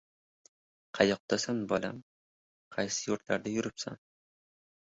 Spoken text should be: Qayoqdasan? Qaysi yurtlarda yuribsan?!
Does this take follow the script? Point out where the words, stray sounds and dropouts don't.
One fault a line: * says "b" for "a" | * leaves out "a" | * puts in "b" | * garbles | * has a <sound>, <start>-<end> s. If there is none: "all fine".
* puts in "bolam"